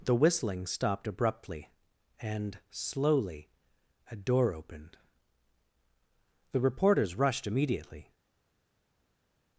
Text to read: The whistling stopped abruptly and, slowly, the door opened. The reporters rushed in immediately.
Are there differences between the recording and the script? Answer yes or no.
yes